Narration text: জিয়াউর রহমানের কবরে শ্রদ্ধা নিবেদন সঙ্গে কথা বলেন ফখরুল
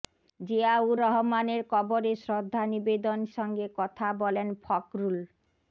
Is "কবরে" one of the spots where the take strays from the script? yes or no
no